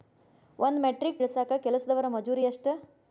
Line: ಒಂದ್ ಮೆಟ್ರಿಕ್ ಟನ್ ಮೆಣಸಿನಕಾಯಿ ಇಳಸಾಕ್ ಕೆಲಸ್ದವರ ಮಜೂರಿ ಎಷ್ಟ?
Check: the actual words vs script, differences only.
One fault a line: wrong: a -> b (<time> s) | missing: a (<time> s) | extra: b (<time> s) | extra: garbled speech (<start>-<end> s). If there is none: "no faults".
missing: ಟನ್ ಮೆಣಸಿನಕಾಯಿ (1.2 s)